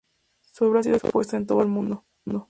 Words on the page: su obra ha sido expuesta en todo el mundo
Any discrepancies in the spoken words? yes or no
no